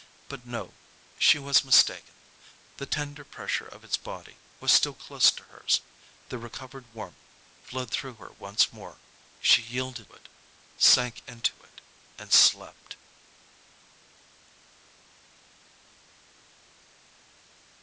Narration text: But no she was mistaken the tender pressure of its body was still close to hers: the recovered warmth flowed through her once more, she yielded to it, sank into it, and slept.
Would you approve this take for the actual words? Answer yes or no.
no